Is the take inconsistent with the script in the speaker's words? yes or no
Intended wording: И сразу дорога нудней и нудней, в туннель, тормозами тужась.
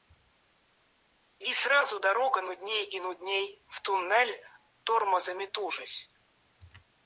no